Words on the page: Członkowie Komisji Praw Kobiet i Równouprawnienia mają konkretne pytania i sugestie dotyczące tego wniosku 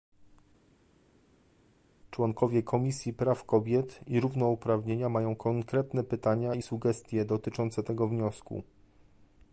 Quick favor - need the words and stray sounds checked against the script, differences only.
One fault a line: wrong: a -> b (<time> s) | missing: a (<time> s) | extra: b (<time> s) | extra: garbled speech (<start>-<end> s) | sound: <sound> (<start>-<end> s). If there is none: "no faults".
no faults